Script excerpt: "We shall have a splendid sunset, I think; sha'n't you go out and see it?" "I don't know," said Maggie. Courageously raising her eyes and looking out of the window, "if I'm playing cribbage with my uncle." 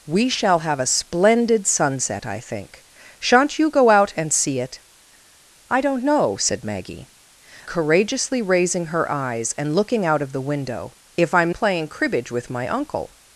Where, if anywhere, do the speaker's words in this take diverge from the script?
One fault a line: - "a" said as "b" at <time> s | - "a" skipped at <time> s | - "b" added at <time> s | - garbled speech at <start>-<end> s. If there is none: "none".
none